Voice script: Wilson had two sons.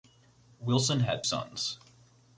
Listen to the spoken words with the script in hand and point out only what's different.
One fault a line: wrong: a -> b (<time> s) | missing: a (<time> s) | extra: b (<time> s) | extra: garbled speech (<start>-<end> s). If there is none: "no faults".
missing: two (1.2 s)